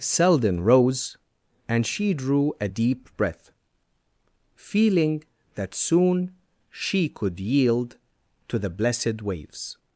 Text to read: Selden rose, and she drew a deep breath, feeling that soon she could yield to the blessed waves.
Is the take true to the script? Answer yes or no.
yes